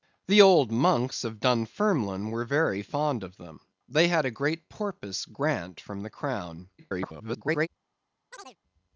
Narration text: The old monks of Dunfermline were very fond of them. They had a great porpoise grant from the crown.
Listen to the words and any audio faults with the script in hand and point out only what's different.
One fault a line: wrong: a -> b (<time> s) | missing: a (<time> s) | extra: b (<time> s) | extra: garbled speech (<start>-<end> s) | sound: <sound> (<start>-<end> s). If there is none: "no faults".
extra: garbled speech (6.8-7.7 s)
sound: chirp (8.3-8.6 s)